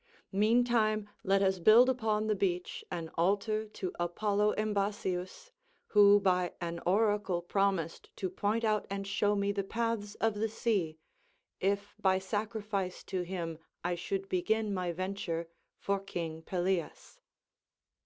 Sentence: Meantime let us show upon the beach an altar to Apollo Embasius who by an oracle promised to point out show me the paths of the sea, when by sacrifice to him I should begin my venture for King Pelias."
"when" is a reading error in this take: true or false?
true